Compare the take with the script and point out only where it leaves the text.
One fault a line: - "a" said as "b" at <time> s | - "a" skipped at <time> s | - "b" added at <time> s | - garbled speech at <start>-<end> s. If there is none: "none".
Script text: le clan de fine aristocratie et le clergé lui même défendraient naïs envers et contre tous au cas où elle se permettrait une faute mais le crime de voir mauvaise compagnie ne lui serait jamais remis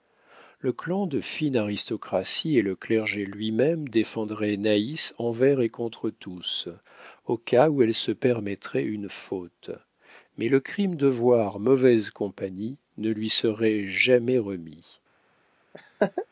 none